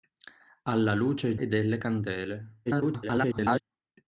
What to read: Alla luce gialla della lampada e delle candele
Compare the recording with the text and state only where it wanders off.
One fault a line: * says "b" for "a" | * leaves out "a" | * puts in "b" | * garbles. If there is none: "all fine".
* leaves out "gialla della lampada"
* garbles